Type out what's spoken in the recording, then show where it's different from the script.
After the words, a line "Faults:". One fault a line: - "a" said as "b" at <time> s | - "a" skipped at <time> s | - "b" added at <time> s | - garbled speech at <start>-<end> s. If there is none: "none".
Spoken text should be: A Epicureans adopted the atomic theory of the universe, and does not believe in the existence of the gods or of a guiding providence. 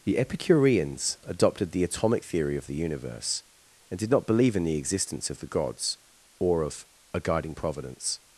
The Epicureans adopted the atomic theory of the universe, and did not believe in the existence of the gods or of a guiding providence.
Faults:
- "A" said as "The" at 0.0 s
- "does" said as "did" at 4.0 s